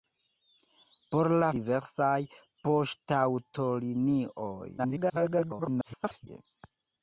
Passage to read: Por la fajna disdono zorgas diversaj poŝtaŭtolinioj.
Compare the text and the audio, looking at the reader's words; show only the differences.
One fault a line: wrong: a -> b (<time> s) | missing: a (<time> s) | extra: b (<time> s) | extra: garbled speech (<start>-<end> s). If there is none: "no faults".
missing: fajna disdono zorgas (1.5 s)
extra: garbled speech (4.8-6.3 s)